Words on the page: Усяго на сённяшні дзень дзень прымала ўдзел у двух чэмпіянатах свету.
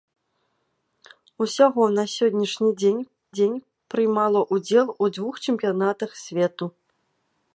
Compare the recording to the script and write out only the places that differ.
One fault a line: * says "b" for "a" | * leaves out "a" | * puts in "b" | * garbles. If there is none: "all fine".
all fine